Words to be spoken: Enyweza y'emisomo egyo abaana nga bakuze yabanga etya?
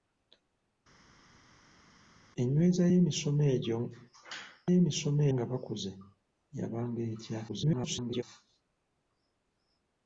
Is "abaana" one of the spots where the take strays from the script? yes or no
yes